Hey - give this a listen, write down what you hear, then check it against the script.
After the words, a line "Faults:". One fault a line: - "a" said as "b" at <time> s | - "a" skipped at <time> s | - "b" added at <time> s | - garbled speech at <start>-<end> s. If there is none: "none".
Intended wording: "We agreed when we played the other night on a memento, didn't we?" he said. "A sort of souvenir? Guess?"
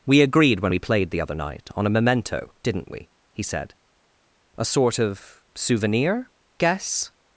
"We agreed when we played the other night on a memento, didn't we?" he said. "A sort of souvenir? Guess?"
Faults:
none